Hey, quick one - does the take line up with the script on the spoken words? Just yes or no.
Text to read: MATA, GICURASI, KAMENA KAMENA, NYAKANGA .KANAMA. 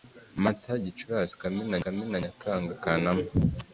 yes